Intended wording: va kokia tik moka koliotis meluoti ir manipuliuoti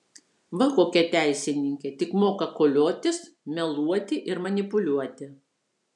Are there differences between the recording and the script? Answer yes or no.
yes